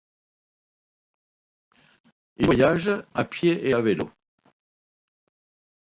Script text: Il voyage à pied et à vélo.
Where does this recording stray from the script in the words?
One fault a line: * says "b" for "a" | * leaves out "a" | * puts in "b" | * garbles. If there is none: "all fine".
all fine